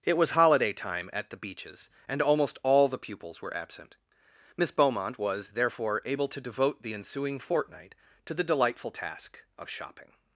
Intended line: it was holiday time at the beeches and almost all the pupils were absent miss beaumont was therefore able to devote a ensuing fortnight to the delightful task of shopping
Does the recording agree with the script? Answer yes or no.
no